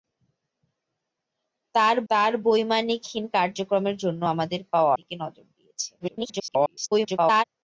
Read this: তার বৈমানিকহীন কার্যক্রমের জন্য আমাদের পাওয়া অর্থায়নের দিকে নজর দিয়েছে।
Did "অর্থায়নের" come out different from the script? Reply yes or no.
yes